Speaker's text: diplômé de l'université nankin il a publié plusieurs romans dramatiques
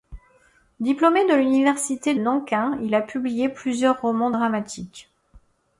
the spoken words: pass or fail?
pass